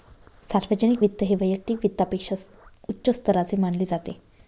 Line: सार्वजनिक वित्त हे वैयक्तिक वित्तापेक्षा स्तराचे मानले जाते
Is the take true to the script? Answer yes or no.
no